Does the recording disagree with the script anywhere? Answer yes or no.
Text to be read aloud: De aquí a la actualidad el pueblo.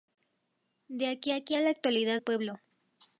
yes